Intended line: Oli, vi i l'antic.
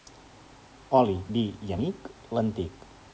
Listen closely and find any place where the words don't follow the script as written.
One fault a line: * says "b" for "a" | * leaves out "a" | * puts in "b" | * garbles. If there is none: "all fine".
* puts in "amic"